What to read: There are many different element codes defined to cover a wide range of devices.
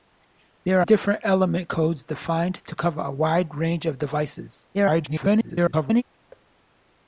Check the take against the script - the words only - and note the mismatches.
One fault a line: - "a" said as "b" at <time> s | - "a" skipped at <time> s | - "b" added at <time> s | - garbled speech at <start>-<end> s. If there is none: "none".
- "are many" skipped at 0.8 s
- garbled speech at 4.7-6.0 s